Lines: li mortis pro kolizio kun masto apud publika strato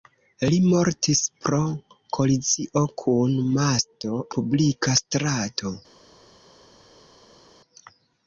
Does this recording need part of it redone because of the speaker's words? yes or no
yes